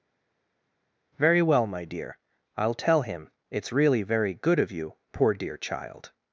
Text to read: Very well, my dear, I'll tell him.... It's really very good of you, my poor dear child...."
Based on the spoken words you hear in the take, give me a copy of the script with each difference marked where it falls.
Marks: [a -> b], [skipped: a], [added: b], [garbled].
Very well, my dear, I'll tell him.... It's really very good of you, [skipped: my] poor dear child...."